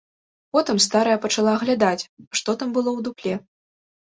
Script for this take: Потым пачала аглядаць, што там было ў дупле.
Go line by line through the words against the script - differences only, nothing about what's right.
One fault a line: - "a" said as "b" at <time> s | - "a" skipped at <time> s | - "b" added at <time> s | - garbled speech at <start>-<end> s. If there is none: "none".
- "старая" added at 0.8 s